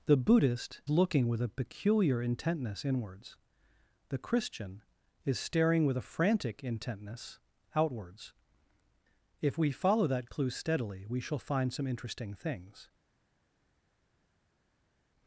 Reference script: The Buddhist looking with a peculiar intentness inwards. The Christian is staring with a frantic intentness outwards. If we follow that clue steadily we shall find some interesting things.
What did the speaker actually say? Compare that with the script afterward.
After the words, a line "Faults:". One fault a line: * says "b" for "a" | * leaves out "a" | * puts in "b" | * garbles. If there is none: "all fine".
The Buddhist looking with a peculiar intentness inwards. The Christian is staring with a frantic intentness outwards. If we follow that clue steadily we shall find some interesting things.
Faults:
all fine